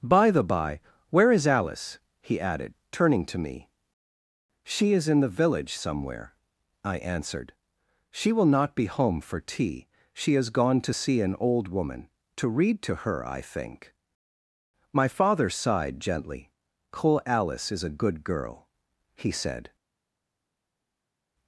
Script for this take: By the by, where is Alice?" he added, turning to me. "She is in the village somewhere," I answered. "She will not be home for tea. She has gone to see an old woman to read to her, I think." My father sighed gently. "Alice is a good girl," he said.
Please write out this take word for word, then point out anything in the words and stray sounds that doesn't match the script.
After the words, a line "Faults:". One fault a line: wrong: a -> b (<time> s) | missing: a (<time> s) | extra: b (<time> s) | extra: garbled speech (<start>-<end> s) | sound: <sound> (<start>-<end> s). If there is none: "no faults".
By the by, where is Alice?" he added, turning to me. "She is in the village somewhere," I answered. "She will not be home for tea. She has gone to see an old woman to read to her, I think." My father sighed gently. cole "Alice is a good girl," he said.
Faults:
extra: cole (16.9 s)